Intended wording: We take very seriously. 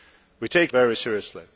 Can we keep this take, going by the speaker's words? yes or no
yes